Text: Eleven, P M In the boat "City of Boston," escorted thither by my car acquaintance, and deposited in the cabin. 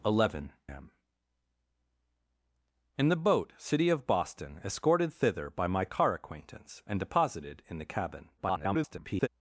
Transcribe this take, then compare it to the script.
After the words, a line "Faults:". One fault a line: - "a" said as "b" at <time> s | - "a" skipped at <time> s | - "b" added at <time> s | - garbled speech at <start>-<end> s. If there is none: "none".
Eleven, M In the boat "City of Boston," escorted thither by my car acquaintance, and deposited in the cabin. [garbled]
Faults:
- "P" skipped at 0.5 s
- garbled speech at 8.4-9.3 s